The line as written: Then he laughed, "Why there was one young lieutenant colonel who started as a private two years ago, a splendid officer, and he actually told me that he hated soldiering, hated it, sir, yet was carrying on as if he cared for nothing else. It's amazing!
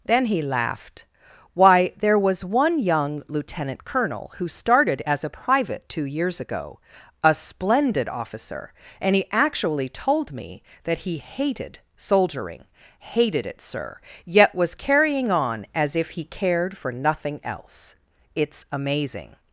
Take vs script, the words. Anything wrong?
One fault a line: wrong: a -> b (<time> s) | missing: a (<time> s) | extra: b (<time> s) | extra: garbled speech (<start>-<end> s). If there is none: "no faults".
no faults